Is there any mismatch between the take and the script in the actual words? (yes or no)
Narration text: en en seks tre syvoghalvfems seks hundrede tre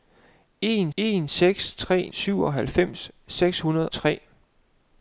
no